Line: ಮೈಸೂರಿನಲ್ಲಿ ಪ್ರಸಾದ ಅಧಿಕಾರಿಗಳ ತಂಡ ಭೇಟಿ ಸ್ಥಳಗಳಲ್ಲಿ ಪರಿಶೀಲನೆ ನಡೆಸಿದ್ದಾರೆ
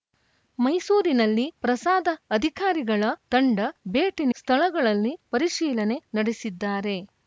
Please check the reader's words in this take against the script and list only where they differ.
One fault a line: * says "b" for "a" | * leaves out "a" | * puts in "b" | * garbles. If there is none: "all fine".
all fine